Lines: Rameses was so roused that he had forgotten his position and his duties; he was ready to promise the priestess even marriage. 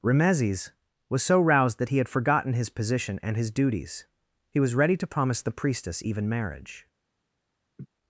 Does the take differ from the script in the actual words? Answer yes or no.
no